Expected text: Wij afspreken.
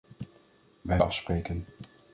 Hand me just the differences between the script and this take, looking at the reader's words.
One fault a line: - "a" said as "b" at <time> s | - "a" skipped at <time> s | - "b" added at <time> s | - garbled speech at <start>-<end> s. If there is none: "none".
none